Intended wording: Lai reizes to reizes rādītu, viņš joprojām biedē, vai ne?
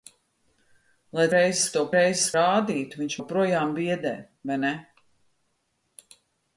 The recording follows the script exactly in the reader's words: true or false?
true